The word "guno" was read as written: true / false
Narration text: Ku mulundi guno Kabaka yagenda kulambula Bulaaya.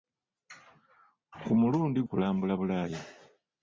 false